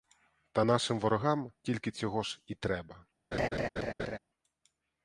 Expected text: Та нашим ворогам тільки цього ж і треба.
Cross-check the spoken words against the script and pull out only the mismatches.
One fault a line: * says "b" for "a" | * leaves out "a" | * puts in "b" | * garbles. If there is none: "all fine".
all fine